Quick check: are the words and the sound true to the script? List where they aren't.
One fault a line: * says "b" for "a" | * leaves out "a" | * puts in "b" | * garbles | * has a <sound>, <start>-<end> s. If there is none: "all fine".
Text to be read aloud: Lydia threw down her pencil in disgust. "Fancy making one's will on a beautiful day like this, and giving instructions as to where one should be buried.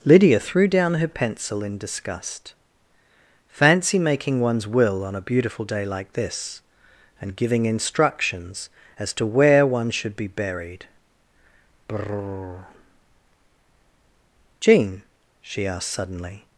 * puts in "Brrr Jean she asked suddenly"